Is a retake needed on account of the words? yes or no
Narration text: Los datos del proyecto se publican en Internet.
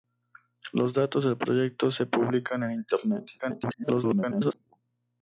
yes